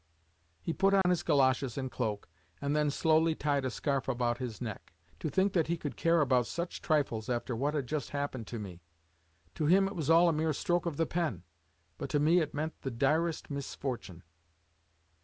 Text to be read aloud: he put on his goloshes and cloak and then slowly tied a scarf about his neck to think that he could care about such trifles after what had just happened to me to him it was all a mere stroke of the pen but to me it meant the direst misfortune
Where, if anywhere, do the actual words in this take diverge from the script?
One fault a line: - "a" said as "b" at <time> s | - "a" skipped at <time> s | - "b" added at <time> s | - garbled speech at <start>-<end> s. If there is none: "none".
none